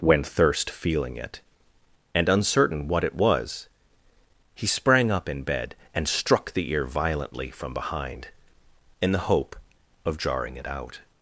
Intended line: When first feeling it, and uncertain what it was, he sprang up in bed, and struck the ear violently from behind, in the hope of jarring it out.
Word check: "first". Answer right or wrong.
wrong